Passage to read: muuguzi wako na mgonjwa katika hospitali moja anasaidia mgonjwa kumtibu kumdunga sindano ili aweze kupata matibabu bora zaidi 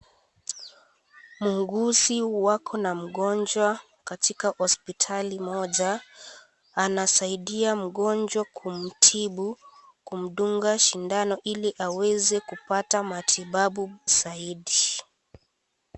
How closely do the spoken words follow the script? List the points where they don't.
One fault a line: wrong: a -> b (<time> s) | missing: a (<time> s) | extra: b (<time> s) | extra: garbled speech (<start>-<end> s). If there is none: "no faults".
missing: bora (13.9 s)